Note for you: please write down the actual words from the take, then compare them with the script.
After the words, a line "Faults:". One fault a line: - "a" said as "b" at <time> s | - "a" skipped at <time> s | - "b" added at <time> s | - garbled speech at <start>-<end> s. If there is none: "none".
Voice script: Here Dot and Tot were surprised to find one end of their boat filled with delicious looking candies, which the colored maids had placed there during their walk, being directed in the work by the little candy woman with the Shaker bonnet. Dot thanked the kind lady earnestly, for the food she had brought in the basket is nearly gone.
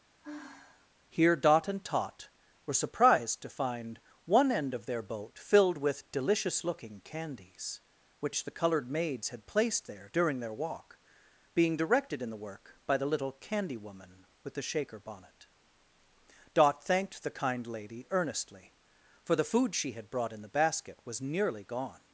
Here Dot and Tot were surprised to find one end of their boat filled with delicious looking candies, which the colored maids had placed there during their walk, being directed in the work by the little candy woman with the Shaker bonnet. Dot thanked the kind lady earnestly, for the food she had brought in the basket was nearly gone.
Faults:
- "is" said as "was" at 21.1 s